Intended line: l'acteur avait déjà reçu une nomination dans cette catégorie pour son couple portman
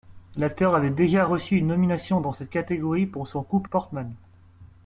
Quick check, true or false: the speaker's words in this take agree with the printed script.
true